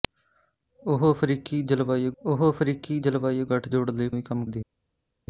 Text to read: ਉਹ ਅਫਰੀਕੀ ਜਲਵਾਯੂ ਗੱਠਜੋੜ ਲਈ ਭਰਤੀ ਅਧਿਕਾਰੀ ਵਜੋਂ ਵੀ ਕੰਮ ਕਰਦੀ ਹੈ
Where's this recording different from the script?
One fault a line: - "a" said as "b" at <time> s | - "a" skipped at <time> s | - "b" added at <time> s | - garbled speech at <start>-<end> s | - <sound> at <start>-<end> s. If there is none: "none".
- "ਗੱਠਜੋੜ ਲਈ ਭਰਤੀ ਅਧਿਕਾਰੀ ਵਜੋਂ" said as "ਉਹ ਅਫਰੀਕੀ ਜਲਵਾਯੂ ਗੱਠਜੋੜ ਲਈ" at 2.2 s
- "ਕਰਦੀ" skipped at 4.4 s